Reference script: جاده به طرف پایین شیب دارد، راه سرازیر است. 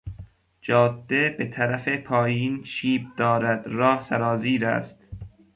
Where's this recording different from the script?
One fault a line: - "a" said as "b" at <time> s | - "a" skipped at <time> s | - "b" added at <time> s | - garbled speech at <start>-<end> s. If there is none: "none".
none